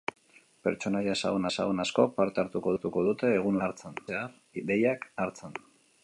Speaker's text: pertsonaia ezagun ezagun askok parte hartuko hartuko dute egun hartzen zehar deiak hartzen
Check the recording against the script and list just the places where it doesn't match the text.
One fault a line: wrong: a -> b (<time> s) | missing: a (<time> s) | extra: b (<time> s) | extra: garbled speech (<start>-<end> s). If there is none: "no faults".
no faults